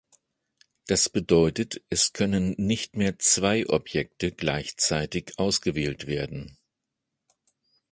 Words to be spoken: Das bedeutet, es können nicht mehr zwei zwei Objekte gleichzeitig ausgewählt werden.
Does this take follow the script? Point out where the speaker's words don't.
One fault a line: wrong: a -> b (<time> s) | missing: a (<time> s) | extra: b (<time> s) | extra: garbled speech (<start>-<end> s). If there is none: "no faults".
missing: zwei (3.7 s)